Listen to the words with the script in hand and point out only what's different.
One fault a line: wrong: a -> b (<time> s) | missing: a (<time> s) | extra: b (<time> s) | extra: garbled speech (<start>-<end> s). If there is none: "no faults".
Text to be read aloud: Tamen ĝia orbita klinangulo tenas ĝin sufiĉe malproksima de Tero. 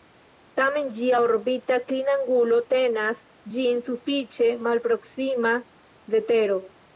no faults